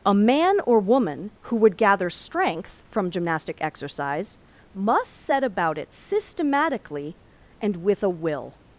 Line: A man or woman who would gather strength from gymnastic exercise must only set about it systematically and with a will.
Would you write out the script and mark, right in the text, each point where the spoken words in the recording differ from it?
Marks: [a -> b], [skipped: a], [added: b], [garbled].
A man or woman who would gather strength from gymnastic exercise must [skipped: only] set about it systematically and with a will.